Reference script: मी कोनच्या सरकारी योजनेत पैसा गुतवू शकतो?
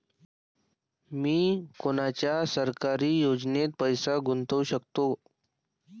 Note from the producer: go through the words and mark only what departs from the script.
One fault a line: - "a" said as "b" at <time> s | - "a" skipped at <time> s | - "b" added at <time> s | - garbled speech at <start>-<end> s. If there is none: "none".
none